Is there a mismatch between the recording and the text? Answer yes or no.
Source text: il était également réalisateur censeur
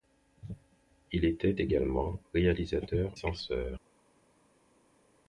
no